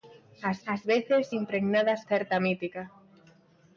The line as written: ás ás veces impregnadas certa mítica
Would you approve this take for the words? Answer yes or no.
yes